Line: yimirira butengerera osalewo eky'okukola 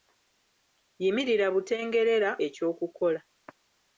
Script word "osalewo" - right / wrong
wrong